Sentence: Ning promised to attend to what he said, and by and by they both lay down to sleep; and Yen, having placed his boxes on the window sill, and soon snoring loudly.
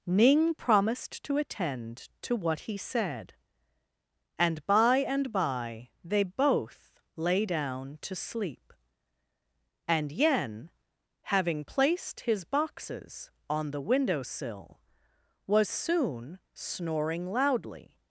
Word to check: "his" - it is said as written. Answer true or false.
true